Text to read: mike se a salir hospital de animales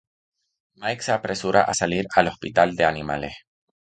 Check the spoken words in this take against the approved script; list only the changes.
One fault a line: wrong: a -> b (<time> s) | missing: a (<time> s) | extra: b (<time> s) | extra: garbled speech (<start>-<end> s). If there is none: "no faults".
extra: apresura (1.1 s)
extra: al (2.1 s)